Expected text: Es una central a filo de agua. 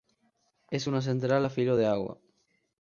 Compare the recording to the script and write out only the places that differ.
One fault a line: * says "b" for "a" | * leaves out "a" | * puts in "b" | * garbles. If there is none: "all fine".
all fine